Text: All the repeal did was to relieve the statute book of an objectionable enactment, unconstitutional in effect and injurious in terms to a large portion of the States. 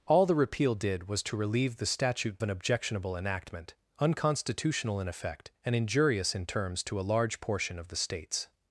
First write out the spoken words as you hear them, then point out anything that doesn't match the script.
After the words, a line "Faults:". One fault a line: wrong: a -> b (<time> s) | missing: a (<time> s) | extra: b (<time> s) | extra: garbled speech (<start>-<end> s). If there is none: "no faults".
All the repeal did was to relieve the statute an objectionable enactment, unconstitutional in effect and injurious in terms to a large portion of the States.
Faults:
missing: book of (2.4 s)